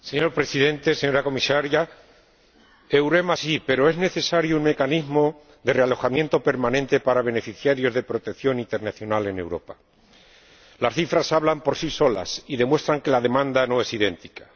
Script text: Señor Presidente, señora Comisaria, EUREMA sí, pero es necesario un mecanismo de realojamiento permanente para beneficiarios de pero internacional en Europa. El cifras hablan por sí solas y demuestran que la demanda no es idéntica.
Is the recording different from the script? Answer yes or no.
yes